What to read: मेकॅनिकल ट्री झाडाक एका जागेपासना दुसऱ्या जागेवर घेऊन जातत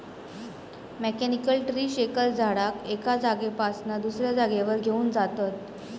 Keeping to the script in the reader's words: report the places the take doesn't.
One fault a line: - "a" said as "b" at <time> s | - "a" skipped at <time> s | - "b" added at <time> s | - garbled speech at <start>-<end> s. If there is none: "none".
- "शेकर" added at 1.9 s